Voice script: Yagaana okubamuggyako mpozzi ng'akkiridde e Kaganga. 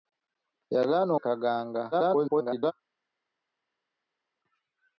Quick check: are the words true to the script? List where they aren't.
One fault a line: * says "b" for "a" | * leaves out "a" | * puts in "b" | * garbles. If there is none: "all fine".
* leaves out "okubamuggyako mpozzi ng'akkiridde"
* garbles